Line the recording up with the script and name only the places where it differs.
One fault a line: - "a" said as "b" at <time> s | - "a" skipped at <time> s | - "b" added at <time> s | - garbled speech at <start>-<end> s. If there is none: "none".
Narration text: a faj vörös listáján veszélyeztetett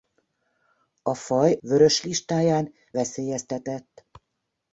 none